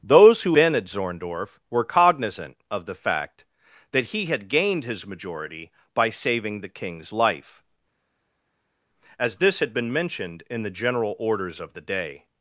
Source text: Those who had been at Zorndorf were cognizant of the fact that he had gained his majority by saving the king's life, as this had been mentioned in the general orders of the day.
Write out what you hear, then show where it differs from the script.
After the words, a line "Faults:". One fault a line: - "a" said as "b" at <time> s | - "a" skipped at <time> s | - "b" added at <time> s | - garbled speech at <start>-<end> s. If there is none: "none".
Those who been at Zorndorf were cognizant of the fact that he had gained his majority by saving the king's life, as this had been mentioned in the general orders of the day.
Faults:
- "had" skipped at 0.6 s